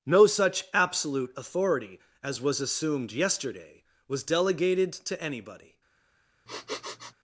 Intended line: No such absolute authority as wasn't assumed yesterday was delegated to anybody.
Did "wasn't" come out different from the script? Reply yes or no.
yes